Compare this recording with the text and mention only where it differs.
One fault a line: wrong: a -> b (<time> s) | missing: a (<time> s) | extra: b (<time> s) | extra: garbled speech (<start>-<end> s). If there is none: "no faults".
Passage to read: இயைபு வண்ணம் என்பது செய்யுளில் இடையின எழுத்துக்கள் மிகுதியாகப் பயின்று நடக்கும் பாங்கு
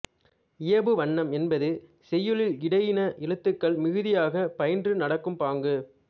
no faults